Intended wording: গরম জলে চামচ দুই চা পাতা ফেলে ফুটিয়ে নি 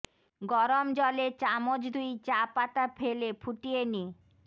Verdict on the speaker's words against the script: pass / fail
pass